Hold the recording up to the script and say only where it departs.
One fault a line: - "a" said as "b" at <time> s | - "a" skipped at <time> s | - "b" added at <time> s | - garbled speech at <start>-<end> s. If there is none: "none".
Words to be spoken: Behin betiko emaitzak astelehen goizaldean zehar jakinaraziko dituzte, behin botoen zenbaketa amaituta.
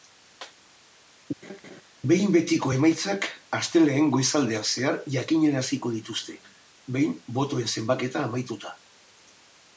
none